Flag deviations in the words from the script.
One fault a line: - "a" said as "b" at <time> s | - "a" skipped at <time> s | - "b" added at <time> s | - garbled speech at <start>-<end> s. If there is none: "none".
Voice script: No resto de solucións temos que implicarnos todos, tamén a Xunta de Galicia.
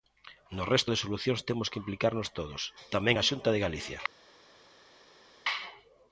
none